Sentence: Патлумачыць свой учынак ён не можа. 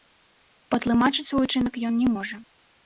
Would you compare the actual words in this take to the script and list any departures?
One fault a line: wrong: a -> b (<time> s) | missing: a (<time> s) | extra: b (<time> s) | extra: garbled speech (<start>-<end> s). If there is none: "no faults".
no faults